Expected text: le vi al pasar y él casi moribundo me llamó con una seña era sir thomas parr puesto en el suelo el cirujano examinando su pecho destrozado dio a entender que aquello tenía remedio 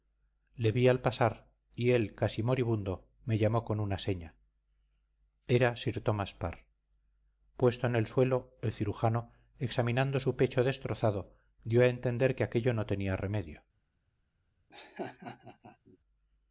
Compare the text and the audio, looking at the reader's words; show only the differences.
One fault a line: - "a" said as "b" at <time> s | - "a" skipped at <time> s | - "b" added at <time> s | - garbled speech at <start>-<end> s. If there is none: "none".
- "no" added at 12.7 s